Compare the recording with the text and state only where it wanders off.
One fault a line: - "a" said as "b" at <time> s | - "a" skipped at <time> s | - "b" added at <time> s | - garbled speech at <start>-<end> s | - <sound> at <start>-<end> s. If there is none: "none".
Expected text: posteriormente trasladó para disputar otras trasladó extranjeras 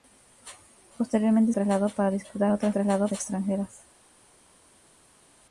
none